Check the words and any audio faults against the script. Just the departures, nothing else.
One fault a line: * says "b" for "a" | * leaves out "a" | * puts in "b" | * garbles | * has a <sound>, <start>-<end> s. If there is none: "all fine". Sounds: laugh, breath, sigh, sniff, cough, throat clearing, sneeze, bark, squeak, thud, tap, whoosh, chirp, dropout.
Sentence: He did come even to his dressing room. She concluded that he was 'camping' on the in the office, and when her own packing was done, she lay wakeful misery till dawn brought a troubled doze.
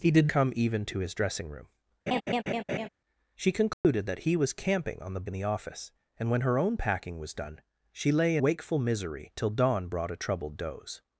* has a laugh, 2.1-2.9 s
* has a dropout, 3.7-3.8 s